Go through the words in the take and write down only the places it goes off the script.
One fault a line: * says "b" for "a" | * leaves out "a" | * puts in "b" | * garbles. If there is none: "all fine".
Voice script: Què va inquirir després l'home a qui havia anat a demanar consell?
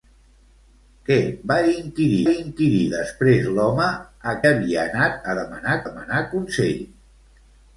* puts in "inquirir"
* leaves out "qui"
* puts in "demanar"